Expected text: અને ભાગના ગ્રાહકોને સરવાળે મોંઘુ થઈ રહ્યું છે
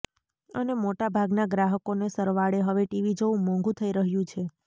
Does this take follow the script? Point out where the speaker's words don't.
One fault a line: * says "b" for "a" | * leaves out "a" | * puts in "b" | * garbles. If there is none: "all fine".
* puts in "મોટા"
* puts in "હવે ટીવી જોવું"